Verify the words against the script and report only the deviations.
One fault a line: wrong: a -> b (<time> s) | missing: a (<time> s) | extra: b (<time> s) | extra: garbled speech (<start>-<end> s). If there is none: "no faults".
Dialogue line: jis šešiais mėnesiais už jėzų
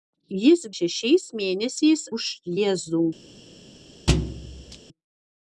no faults